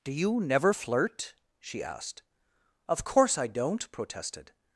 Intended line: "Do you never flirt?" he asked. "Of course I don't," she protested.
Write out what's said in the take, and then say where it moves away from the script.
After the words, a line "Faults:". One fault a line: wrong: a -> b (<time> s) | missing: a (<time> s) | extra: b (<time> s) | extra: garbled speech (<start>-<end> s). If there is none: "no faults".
"Do you never flirt?" she asked. "Of course I don't," protested.
Faults:
wrong: he -> she (1.6 s)
missing: she (3.9 s)